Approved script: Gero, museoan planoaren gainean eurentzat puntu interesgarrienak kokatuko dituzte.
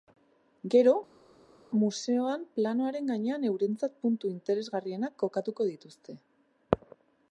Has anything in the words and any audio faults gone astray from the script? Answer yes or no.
no